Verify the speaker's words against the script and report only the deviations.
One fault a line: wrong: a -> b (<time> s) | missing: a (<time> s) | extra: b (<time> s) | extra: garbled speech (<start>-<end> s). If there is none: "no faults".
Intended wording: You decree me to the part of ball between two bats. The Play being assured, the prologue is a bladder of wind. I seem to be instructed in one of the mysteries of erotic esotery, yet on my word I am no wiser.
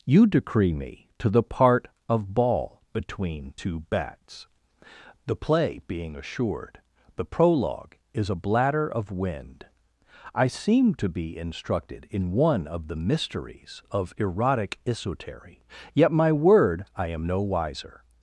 missing: on (16.1 s)